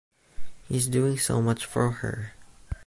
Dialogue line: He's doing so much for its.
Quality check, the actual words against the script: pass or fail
fail